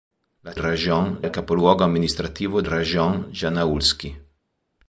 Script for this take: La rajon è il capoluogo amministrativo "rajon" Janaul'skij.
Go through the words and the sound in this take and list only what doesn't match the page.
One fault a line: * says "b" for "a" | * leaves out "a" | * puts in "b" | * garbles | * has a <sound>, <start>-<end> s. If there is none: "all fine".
all fine